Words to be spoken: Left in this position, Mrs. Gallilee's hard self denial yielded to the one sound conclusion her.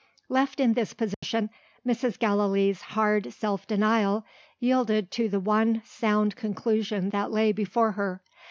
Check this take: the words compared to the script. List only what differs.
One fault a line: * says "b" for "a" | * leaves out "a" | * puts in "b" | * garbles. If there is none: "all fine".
* puts in "that lay before"